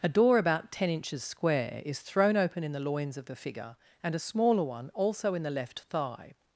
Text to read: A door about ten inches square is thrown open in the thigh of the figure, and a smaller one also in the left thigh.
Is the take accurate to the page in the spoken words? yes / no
no